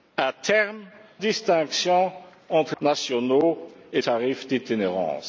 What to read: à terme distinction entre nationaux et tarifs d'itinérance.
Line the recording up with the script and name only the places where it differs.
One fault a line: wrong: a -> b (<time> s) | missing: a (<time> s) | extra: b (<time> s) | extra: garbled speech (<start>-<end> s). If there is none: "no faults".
no faults